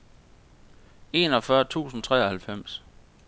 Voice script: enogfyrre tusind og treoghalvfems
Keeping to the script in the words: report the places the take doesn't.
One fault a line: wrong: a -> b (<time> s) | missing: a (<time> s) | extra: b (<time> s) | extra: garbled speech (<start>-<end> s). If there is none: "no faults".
no faults